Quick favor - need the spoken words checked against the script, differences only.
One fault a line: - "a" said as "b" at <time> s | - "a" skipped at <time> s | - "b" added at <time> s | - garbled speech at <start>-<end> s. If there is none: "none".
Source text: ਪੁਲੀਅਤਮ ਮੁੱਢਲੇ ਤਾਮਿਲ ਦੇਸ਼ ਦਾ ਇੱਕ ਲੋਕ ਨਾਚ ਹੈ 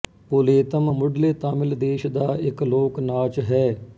none